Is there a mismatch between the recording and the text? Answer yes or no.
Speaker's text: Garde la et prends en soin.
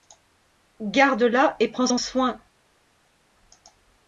no